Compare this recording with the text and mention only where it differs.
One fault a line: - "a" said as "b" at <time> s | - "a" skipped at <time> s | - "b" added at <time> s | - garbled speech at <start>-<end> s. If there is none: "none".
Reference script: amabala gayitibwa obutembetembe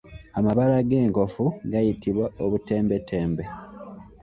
- "g'enkofu" added at 0.9 s